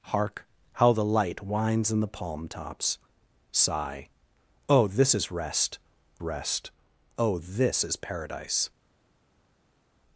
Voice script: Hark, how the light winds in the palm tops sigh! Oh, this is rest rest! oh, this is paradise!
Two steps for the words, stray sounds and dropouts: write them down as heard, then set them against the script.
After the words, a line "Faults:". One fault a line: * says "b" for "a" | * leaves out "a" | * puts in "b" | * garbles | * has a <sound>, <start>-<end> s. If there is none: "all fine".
Hark, how the light winds in the palm tops sigh! Oh, this is rest rest! oh, this is paradise!
Faults:
all fine